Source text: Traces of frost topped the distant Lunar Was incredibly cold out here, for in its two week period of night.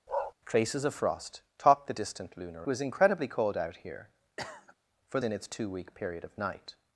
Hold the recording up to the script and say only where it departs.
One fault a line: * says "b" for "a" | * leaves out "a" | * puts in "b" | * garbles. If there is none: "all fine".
all fine